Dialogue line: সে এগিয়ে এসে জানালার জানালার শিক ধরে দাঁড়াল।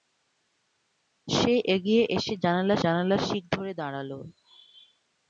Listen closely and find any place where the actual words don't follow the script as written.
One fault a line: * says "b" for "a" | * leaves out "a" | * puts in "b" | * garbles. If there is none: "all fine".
all fine